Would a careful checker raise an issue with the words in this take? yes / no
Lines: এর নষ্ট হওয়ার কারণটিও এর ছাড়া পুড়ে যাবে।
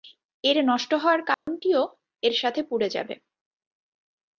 yes